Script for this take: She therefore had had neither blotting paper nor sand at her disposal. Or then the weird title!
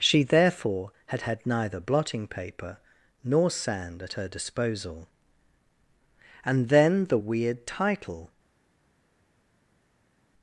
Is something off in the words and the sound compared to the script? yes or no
yes